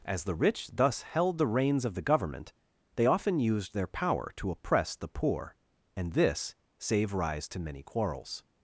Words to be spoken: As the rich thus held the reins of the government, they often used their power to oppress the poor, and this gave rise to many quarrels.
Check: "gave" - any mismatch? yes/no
yes